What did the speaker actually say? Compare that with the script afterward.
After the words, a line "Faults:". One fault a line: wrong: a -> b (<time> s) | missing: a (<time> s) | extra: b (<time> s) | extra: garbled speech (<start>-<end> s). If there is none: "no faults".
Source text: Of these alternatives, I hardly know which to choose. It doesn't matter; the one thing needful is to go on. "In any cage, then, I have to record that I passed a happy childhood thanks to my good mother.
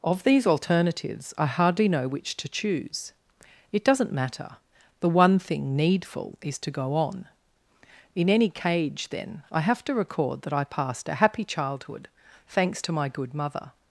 Of these alternatives, I hardly know which to choose. It doesn't matter; the one thing needful is to go on. "In any cage, then, I have to record that I passed a happy childhood thanks to my good mother.
Faults:
no faults